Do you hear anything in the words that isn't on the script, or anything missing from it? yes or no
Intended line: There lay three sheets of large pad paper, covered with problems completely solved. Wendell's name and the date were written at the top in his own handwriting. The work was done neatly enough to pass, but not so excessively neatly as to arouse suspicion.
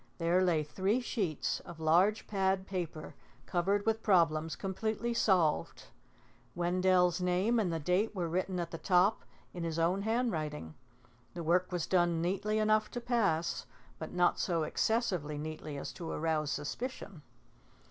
no